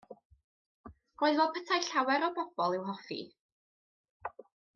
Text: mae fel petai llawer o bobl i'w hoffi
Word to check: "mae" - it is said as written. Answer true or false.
false